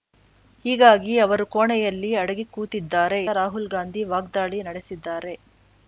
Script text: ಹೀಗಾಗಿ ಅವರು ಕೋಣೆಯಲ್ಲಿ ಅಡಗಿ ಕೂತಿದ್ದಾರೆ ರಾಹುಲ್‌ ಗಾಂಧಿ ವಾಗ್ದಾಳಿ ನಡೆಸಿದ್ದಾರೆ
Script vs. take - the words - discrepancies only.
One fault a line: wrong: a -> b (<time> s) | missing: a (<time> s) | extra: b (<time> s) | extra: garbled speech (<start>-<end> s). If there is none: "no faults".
no faults